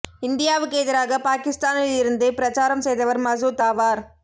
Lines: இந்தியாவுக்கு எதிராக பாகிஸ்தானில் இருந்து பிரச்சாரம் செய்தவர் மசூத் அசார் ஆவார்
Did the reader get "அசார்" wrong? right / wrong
wrong